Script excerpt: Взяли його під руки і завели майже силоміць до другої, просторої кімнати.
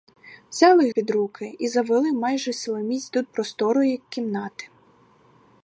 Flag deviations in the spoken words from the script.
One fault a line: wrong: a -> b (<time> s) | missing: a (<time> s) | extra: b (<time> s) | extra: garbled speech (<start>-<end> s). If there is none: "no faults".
missing: його (0.9 s)
missing: другої (3.2 s)